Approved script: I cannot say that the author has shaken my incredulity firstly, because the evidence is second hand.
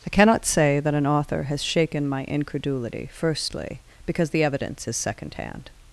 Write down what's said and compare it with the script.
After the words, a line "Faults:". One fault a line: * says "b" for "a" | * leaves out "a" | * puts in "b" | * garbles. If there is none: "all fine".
I cannot say that an author has shaken my incredulity firstly, because the evidence is second hand.
Faults:
* says "an" for "the"